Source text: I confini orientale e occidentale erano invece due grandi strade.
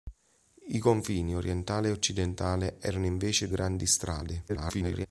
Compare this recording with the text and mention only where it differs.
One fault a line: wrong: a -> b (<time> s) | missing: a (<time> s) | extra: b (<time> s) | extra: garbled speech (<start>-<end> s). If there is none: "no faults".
missing: due (3.5 s)
extra: garbled speech (4.5-5.1 s)